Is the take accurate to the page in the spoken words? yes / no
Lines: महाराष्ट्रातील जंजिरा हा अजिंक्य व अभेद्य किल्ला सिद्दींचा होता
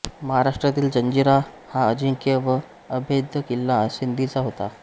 yes